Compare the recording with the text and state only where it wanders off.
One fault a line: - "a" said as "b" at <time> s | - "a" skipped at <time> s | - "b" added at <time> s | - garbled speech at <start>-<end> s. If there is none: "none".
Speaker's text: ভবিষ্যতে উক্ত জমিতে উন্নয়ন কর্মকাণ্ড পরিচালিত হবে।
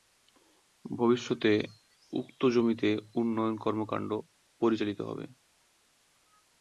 none